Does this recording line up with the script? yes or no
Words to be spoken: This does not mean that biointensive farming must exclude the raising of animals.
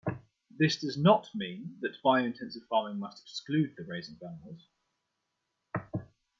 yes